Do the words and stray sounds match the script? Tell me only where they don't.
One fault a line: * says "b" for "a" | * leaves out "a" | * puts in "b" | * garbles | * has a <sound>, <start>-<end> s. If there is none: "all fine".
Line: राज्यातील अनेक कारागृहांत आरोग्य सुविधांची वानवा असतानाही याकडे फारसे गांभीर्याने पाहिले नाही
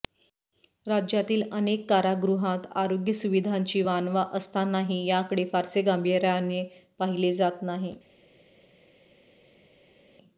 * puts in "जात"